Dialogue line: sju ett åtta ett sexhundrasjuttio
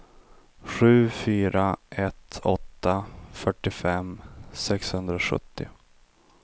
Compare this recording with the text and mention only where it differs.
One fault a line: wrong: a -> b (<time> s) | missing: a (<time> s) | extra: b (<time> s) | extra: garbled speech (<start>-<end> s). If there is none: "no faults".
extra: fyra (1.1 s)
wrong: ett -> fyrtiofem (3.3 s)